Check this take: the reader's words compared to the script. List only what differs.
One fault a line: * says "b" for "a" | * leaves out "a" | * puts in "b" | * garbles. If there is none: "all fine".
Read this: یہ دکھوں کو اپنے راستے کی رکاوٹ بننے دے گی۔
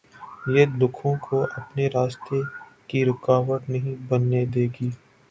* puts in "نہیں"